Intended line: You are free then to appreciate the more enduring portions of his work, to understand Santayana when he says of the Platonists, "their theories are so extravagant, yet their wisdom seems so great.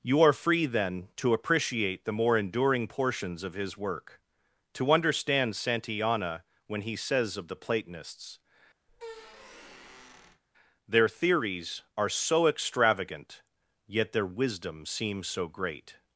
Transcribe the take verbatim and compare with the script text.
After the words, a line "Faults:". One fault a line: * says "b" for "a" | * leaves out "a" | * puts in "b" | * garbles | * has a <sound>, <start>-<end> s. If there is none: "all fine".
You are free then to appreciate the more enduring portions of his work, to understand Santayana when he says of the Platonists, "their theories are so extravagant, yet their wisdom seems so great.
Faults:
* has a squeak, 8.9-10.4 s